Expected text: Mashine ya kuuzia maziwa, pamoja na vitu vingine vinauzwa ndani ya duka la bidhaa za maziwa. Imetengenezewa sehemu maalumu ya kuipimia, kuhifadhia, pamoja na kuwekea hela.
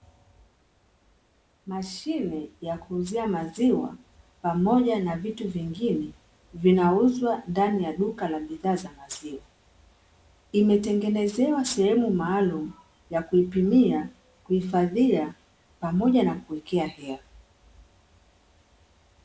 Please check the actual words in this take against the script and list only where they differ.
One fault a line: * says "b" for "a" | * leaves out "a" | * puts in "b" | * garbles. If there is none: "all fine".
all fine